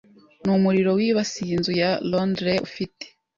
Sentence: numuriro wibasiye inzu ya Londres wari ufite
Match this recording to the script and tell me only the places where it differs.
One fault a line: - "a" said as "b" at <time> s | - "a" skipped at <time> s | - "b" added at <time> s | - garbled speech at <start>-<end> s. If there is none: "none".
- "wari" skipped at 2.6 s